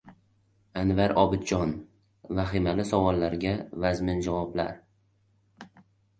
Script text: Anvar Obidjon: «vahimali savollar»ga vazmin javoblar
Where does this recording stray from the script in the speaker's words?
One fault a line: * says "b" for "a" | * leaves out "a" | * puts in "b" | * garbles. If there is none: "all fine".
all fine